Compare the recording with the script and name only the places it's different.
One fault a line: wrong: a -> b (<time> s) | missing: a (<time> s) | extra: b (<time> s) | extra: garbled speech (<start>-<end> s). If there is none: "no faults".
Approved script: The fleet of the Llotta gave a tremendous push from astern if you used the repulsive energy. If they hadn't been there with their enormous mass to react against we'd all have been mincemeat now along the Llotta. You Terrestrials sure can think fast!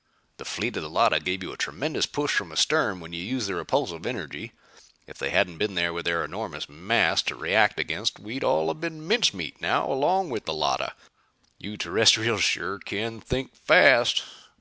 extra: you (1.4 s)
wrong: if -> when (3.0 s)
extra: with (10.3 s)